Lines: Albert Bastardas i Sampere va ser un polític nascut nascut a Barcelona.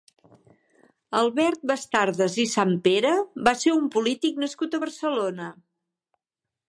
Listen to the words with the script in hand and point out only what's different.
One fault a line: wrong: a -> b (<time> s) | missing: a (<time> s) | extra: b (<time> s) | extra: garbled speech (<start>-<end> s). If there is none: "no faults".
missing: nascut (4.8 s)